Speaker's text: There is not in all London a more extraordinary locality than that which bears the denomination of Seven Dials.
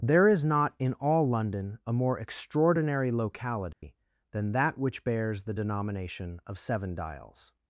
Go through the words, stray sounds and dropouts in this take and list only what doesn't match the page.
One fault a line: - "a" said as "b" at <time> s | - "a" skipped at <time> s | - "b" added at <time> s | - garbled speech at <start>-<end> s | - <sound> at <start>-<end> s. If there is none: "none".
- dropout at 3.7-3.8 s